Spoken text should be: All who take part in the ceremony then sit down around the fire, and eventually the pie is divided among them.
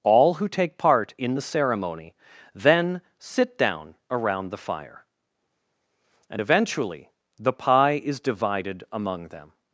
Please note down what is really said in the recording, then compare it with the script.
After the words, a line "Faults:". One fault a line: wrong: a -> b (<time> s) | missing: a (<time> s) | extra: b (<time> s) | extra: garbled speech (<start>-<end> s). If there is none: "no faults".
All who take part in the ceremony then sit down around the fire, and eventually the pie is divided among them.
Faults:
no faults